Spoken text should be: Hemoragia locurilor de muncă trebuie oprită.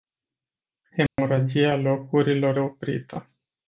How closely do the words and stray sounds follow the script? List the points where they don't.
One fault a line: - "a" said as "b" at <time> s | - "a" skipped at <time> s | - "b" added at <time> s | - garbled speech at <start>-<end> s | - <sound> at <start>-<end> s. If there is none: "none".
- dropout at 1.1-1.2 s
- "de muncă trebuie" skipped at 2.5 s